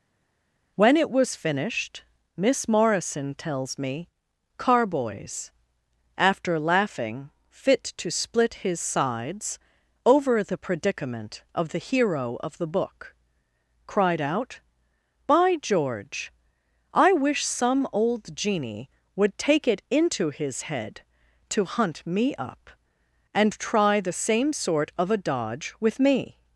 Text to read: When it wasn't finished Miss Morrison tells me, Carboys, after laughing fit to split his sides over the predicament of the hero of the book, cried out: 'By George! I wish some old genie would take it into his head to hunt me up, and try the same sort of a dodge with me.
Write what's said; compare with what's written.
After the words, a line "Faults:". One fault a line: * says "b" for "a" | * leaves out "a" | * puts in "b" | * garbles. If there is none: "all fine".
When it was finished Miss Morrison tells me, Carboys, after laughing fit to split his sides over the predicament of the hero of the book, cried out: 'By George! I wish some old genie would take it into his head to hunt me up, and try the same sort of a dodge with me.
Faults:
* says "was" for "wasn't"